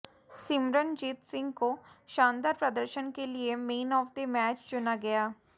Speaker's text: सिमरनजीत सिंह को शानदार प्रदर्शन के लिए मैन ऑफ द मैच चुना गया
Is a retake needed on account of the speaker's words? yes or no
no